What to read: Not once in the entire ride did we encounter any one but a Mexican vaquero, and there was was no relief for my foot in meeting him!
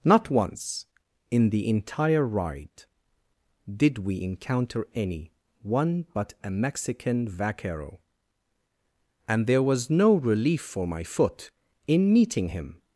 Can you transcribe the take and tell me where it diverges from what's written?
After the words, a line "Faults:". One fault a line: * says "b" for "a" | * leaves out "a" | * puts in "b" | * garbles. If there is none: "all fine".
Not once in the entire ride did we encounter any one but a Mexican vaquero, and there was no relief for my foot in meeting him!
Faults:
* leaves out "was"